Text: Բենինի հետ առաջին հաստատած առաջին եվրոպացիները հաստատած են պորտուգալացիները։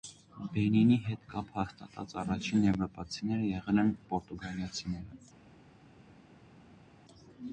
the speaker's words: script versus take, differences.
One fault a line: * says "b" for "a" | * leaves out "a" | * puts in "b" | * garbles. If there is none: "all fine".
* says "կապ" for "առաջին"
* says "եղել" for "հաստատած"